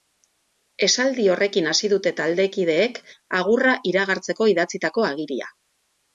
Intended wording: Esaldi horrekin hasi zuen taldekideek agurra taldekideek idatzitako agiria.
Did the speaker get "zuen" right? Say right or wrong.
wrong